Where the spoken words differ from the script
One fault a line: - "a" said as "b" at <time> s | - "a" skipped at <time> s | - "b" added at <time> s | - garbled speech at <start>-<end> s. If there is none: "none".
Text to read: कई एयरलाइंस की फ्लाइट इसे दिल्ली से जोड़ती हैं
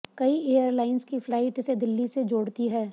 none